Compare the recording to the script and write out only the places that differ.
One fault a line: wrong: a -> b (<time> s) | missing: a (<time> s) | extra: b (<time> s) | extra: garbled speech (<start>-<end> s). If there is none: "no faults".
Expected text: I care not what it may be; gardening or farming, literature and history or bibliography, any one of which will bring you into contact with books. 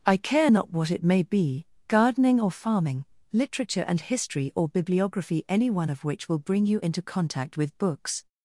no faults